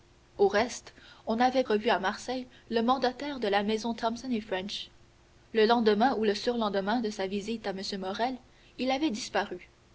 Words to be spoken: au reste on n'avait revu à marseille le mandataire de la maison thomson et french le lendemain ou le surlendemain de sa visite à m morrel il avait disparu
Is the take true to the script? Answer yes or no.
yes